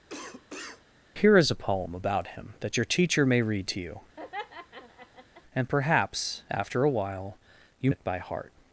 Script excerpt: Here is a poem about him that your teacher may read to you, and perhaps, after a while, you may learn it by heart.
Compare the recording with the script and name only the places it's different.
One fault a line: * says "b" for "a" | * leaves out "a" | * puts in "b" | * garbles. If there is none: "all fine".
* leaves out "may learn"